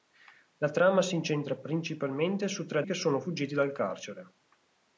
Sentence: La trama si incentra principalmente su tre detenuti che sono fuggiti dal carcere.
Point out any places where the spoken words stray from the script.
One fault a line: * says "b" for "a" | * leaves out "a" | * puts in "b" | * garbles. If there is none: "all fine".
* leaves out "detenuti"